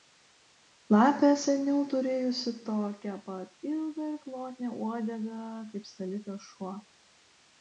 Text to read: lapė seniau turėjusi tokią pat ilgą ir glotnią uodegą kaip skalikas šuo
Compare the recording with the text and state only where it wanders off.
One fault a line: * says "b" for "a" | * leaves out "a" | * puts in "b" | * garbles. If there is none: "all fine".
all fine